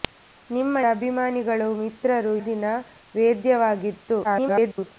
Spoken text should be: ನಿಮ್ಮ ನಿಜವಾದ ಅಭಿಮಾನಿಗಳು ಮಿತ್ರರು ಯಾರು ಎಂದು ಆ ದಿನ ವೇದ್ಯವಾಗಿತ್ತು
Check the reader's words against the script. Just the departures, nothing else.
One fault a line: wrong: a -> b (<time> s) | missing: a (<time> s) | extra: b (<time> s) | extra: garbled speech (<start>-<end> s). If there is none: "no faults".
missing: ನಿಜವಾದ (0.8 s)
missing: ಯಾರು ಎಂದು ಆ (2.3 s)
extra: garbled speech (4.2-4.9 s)